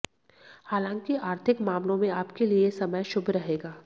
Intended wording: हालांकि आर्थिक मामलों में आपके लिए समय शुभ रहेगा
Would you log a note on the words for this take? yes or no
no